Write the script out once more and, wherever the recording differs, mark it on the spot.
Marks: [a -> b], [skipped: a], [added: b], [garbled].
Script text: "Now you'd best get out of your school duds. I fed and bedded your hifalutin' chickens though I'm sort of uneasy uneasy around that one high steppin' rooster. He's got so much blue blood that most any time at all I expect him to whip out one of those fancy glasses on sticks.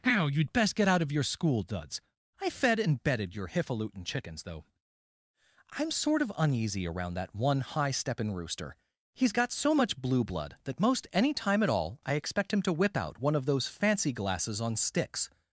"Now you'd best get out of your school duds. I fed and bedded your hifalutin' chickens though I'm sort of uneasy [skipped: uneasy] around that one high steppin' rooster. He's got so much blue blood that most any time at all I expect him to whip out one of those fancy glasses on sticks.